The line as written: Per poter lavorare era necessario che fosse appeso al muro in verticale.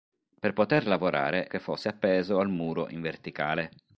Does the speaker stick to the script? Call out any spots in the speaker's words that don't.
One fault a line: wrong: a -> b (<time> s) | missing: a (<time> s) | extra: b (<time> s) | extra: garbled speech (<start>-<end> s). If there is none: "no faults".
missing: era necessario (1.5 s)